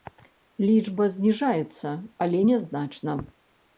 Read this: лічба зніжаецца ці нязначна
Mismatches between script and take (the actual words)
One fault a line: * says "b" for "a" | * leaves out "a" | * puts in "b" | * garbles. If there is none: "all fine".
* says "але" for "ці"